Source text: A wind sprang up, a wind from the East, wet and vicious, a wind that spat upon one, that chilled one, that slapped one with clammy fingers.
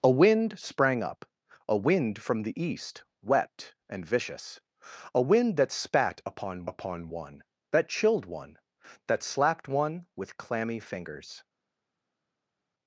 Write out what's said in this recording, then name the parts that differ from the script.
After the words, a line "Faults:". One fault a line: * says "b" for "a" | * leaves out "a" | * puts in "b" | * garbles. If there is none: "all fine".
A wind sprang up, a wind from the East, wet and vicious, a wind that spat upon upon one, that chilled one, that slapped one with clammy fingers.
Faults:
* puts in "upon"